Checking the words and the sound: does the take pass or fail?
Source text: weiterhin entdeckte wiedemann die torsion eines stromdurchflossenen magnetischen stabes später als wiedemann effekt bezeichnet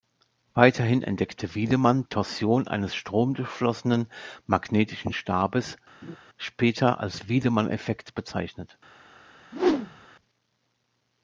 fail